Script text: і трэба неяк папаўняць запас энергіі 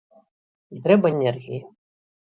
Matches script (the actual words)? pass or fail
fail